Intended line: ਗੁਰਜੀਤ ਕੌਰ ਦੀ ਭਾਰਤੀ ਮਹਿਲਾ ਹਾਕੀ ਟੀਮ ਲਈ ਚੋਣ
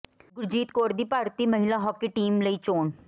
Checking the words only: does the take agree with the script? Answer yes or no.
yes